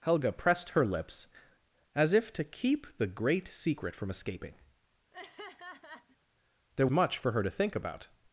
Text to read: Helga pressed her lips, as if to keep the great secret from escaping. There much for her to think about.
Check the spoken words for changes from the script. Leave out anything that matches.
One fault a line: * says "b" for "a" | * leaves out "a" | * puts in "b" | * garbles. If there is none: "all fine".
all fine